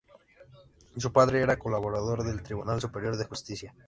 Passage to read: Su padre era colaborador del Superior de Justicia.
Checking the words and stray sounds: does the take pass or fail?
fail